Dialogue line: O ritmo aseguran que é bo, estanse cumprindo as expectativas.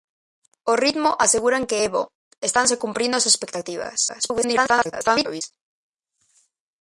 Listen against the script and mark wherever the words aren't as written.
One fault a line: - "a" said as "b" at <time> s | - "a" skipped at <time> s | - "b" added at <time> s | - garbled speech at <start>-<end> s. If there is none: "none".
- garbled speech at 4.1-5.4 s